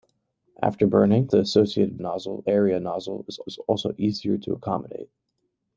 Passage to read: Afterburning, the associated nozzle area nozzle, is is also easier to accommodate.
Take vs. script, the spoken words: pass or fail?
pass